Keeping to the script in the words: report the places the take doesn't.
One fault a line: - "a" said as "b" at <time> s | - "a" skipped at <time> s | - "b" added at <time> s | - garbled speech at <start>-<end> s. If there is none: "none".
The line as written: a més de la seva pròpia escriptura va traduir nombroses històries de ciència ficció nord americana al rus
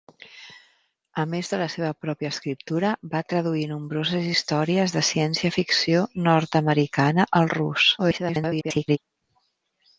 - garbled speech at 8.0-9.0 s